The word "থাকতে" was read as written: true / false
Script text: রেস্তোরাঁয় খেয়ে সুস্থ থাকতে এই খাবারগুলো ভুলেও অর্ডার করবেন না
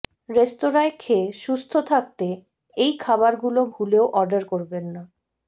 true